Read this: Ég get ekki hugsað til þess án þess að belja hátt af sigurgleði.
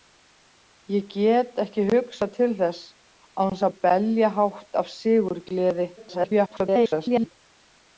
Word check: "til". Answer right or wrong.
right